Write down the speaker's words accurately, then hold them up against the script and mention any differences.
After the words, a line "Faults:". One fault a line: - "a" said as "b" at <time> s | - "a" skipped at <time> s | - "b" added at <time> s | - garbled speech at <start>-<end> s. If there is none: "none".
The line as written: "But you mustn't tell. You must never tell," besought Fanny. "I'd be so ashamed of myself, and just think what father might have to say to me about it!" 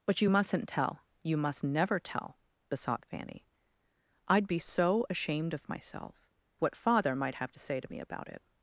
"But you mustn't tell. You must never tell," besought Fanny. "I'd be so ashamed of myself, what father might have to say to me about it!"
Faults:
- "and just think" skipped at 6.3 s